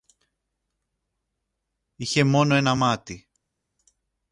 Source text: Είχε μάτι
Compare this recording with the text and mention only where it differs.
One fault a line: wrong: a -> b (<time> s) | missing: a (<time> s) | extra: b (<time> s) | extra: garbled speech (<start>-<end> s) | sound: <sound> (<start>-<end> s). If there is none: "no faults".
extra: μόνο ένα (2.2 s)